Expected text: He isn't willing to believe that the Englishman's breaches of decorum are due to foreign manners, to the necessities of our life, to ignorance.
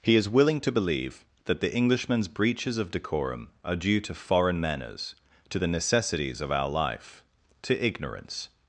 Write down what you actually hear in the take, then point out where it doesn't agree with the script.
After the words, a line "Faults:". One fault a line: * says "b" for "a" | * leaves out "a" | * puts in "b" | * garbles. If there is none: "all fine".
He is willing to believe that the Englishman's breaches of decorum are due to foreign manners, to the necessities of our life, to ignorance.
Faults:
* says "is" for "isn't"